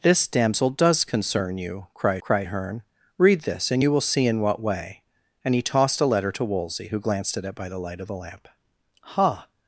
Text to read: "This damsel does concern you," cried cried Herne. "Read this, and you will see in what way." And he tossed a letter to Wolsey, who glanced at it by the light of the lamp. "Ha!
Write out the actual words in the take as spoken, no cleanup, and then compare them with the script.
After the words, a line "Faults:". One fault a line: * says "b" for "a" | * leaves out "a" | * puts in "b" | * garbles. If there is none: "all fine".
"This damsel does concern you," cried cried Herne. "Read this, and you will see in what way." And he tossed a letter to Wolsey, who glanced at it by the light of the lamp. "Ha!
Faults:
all fine